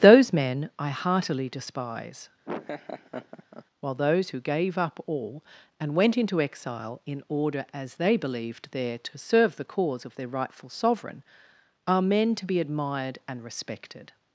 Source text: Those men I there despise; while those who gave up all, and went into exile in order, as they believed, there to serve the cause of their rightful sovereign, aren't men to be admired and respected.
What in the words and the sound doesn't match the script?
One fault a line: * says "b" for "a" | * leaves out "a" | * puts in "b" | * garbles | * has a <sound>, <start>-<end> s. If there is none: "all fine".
* says "heartily" for "there"
* has a laugh, 2.4-3.6 s
* says "are" for "aren't"